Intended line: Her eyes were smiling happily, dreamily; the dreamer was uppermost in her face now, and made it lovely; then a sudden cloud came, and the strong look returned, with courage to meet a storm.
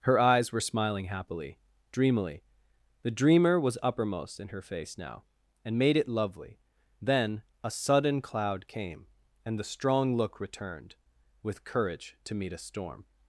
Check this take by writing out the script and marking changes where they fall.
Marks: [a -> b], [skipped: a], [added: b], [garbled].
Her eyes were smiling happily, dreamily; the dreamer was uppermost in her face now, and made it lovely; then a sudden cloud came, and the strong look returned, with courage to meet a storm.